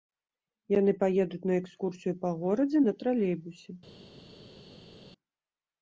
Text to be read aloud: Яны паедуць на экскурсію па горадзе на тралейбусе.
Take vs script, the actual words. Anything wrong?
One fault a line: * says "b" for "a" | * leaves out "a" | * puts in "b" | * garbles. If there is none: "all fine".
all fine